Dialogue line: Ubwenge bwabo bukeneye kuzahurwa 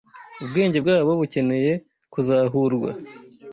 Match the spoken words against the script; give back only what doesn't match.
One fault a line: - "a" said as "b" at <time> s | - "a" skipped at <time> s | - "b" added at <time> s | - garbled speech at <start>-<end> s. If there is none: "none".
none